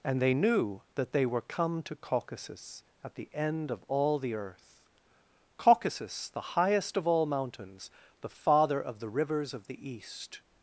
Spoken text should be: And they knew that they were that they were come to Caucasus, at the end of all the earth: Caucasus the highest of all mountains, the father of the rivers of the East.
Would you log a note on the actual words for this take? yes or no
yes